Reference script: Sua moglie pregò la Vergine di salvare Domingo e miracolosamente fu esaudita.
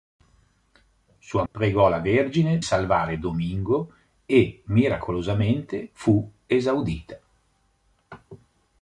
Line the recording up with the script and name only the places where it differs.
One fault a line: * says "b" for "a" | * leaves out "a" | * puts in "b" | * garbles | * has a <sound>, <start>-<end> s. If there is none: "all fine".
* leaves out "moglie"
* leaves out "di"